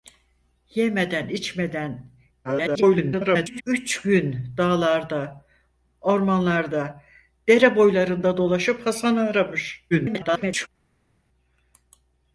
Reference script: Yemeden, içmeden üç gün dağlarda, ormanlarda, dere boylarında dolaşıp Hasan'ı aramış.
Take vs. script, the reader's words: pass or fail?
fail